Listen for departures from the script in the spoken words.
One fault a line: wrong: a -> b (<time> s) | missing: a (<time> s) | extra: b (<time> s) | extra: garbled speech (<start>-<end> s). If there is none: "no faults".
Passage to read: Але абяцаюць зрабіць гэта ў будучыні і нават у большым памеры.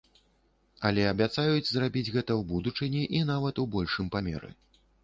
no faults